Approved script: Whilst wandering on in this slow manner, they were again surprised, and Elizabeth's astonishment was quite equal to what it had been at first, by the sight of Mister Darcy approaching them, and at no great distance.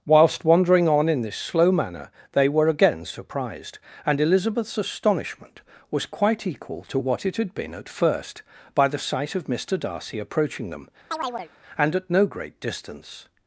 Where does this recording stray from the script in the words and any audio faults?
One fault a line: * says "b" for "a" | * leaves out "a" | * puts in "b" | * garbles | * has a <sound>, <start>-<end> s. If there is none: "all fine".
* has a chirp, 11.1-11.5 s